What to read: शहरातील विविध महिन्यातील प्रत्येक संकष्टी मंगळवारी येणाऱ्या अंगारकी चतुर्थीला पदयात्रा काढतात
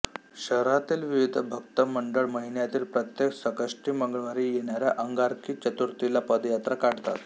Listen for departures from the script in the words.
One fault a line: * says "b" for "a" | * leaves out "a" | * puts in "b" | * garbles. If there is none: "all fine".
* puts in "भक्त मंडळ"